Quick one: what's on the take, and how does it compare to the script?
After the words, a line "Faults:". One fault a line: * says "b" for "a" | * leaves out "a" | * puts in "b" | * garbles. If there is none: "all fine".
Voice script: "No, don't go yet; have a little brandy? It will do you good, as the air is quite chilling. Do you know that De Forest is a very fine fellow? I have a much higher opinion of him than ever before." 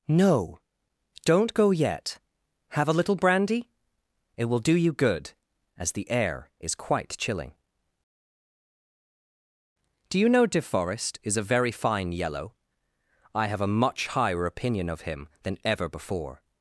"No, don't go yet; have a little brandy? It will do you good, as the air is quite chilling. Do you know De Forest is a very fine yellow? I have a much higher opinion of him than ever before."
Faults:
* leaves out "that"
* says "yellow" for "fellow"